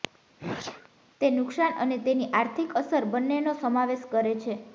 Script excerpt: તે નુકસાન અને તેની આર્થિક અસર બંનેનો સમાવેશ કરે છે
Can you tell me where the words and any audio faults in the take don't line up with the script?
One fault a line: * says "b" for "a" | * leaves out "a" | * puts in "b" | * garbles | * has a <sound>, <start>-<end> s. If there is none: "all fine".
* has a sneeze, 0.4-0.9 s